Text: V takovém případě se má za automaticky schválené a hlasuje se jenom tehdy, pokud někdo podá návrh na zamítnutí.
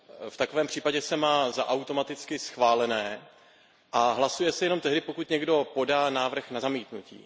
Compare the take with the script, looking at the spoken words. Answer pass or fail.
pass